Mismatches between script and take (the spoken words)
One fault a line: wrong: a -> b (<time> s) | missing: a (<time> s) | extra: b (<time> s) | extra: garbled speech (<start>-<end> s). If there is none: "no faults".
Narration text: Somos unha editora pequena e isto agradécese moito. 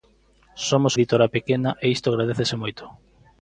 missing: unha (0.9 s)